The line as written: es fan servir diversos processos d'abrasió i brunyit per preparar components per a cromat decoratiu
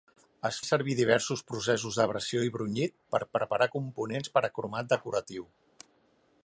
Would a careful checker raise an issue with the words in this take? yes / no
yes